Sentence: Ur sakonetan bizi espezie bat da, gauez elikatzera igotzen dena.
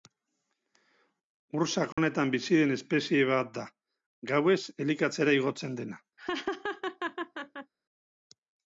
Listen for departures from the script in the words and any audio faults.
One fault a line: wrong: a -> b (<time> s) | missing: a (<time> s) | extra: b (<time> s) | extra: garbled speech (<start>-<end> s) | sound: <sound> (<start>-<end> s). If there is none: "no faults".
sound: dropout (1.9-2.0 s)
extra: den (2.6 s)
sound: laugh (6.2-7.7 s)